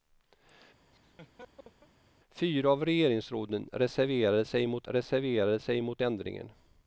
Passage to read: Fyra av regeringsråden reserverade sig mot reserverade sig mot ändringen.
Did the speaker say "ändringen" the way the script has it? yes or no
yes